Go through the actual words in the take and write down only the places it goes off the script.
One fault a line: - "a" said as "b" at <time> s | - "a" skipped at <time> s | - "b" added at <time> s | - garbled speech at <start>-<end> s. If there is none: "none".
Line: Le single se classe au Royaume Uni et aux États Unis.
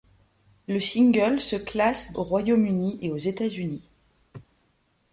none